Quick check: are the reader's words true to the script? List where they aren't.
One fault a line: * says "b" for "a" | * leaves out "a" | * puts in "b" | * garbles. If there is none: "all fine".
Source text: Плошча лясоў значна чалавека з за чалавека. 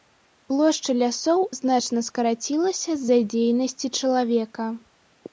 * says "скарацілася" for "чалавека"
* puts in "дзейнасці"